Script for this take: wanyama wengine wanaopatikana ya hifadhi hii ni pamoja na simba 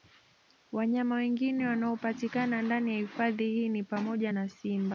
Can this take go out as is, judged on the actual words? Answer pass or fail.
fail